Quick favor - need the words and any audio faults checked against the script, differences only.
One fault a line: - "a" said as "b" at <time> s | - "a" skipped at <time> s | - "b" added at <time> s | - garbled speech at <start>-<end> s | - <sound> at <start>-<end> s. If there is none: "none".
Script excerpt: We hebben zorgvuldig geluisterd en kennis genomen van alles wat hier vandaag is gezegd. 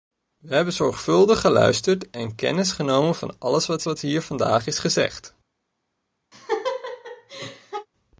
- "wat" added at 3.8 s
- laugh at 6.3-7.9 s